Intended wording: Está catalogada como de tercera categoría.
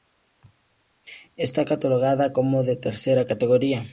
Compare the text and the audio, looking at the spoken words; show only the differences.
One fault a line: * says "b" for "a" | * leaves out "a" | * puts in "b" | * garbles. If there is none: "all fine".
all fine